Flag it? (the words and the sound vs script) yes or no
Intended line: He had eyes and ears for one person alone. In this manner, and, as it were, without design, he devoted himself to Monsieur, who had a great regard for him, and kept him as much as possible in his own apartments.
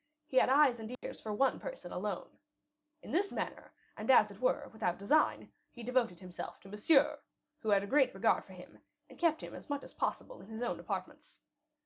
yes